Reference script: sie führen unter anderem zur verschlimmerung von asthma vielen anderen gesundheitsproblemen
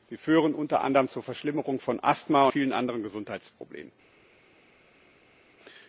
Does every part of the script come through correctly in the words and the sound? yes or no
yes